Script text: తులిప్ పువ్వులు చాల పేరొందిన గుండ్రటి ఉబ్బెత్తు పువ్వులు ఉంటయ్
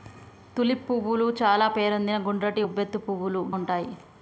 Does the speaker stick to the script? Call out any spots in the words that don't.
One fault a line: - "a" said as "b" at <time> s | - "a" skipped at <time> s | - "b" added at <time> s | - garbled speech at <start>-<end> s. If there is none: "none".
none